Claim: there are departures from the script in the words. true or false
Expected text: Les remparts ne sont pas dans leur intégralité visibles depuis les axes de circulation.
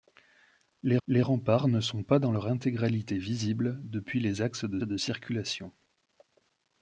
true